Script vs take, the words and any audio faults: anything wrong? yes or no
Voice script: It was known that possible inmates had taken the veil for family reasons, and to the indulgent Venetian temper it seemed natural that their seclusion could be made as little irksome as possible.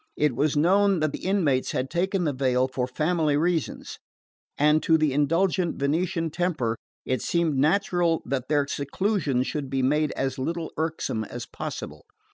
yes